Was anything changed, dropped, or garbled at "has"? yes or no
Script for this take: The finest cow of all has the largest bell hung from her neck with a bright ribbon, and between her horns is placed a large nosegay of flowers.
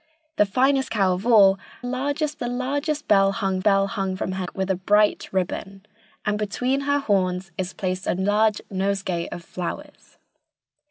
yes